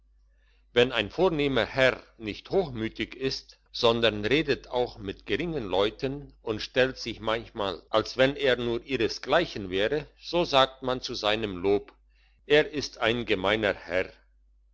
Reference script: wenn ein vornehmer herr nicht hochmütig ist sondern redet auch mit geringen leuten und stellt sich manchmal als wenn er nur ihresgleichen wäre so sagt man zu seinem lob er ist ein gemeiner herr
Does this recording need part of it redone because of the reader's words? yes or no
no